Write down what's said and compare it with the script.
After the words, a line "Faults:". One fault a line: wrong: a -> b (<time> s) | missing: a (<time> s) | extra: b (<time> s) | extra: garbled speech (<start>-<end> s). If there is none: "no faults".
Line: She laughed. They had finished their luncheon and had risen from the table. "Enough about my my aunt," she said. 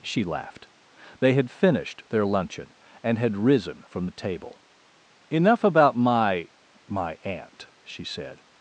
She laughed. They had finished their luncheon and had risen from the table. "Enough about my my aunt," she said.
Faults:
no faults